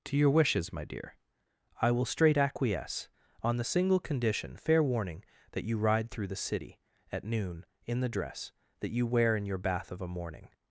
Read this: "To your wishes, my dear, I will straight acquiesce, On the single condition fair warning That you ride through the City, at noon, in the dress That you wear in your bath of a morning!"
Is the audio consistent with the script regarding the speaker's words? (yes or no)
yes